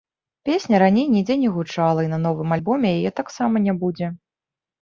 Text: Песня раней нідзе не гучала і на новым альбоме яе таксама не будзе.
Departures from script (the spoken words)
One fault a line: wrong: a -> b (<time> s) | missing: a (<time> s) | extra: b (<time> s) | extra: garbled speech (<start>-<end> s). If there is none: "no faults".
no faults